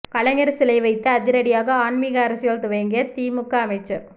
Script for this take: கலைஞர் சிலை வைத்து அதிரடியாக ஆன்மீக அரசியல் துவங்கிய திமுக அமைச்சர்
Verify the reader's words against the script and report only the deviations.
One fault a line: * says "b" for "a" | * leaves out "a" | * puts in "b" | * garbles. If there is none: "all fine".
all fine